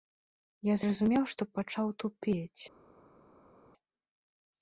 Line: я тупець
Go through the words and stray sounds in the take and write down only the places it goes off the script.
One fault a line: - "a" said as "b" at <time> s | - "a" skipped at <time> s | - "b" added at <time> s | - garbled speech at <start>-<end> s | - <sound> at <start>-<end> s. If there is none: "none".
- "зразумеў што пачаў" added at 0.8 s